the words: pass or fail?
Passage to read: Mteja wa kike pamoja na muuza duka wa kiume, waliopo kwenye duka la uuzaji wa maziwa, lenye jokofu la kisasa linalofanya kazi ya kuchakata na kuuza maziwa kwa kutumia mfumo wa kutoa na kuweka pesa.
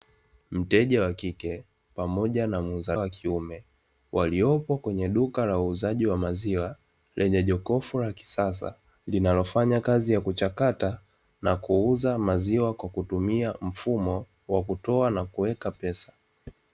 fail